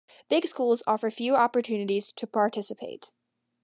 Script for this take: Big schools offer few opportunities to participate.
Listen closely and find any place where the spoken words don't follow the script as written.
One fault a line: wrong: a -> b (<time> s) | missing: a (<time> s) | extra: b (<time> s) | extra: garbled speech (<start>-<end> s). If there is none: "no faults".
no faults